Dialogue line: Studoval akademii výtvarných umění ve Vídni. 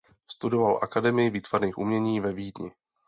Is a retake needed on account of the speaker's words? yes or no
no